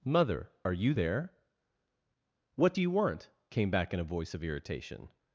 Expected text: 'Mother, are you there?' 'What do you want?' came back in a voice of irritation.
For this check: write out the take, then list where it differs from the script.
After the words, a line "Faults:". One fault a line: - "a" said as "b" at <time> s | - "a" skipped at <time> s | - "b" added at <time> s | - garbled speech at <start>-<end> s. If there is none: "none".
'Mother, are you there?' 'What do you want?' came back in a voice of irritation.
Faults:
none